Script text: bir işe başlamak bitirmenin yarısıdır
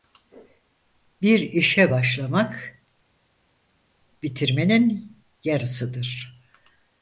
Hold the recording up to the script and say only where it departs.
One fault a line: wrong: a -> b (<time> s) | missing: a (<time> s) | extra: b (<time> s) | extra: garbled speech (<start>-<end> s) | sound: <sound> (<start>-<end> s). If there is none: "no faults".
no faults